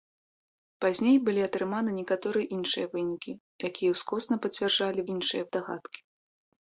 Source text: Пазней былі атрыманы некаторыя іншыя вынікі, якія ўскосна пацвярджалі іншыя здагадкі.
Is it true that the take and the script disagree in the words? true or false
false